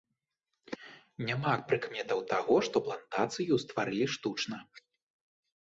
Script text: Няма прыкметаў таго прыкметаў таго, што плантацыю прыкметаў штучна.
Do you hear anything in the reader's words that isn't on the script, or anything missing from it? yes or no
yes